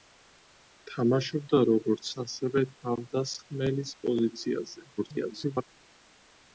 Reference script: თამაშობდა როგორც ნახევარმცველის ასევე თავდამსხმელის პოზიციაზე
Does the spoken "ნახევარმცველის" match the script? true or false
false